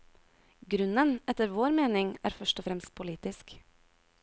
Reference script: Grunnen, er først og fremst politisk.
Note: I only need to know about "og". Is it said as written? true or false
true